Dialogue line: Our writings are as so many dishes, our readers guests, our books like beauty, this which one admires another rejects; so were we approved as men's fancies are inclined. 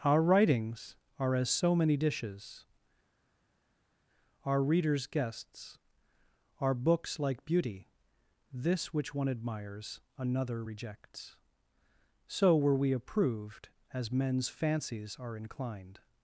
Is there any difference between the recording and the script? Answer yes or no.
no